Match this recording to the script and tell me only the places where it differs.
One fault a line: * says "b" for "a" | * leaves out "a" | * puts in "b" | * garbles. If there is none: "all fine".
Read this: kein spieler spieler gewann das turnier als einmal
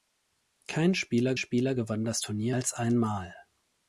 all fine